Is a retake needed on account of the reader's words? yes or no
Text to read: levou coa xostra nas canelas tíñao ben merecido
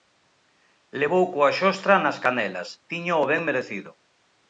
no